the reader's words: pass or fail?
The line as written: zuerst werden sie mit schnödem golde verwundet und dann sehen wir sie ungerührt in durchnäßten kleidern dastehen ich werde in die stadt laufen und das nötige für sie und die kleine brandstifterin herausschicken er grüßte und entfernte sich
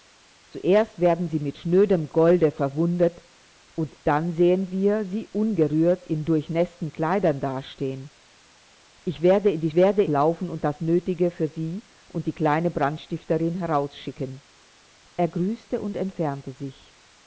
fail